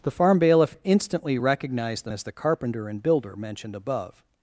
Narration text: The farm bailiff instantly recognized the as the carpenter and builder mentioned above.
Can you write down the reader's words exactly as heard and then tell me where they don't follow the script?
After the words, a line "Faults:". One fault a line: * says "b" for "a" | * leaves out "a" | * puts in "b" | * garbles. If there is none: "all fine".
The farm bailiff instantly recognized the as the carpenter and builder mentioned above.
Faults:
all fine